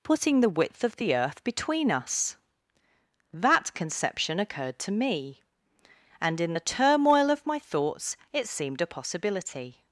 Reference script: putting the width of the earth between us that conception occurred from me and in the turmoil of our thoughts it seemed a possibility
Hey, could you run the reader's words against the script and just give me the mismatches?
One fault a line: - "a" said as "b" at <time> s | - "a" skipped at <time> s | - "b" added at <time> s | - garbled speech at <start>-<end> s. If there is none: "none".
- "from" said as "to" at 4.8 s
- "our" said as "my" at 7.5 s